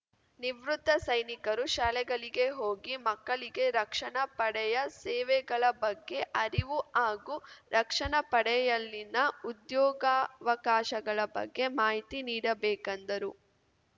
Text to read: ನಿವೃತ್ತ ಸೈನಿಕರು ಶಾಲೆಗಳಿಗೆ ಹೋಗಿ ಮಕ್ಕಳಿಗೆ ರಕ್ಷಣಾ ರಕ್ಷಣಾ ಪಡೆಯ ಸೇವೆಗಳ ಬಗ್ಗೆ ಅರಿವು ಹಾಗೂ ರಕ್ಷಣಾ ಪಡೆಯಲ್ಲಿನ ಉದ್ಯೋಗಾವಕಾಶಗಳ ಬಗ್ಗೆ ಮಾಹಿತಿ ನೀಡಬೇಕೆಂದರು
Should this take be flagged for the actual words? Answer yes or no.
yes